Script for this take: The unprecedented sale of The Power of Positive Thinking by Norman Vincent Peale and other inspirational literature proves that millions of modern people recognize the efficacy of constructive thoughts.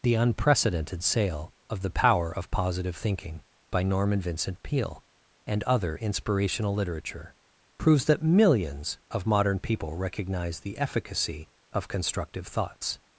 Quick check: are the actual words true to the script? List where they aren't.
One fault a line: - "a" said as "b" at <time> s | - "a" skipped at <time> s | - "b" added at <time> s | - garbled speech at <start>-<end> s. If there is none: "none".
none